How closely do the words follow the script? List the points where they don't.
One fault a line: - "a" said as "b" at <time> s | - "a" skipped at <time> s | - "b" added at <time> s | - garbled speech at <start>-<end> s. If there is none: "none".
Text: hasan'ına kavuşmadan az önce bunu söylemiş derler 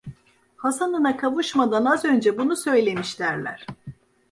none